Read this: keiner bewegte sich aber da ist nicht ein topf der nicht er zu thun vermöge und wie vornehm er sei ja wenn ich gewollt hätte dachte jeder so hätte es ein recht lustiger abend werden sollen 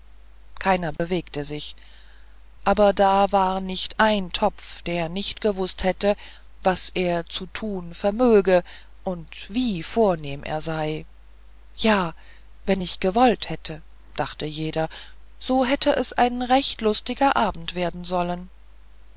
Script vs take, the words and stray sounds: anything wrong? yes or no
yes